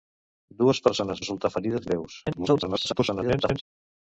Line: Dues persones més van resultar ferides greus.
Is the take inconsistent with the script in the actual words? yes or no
yes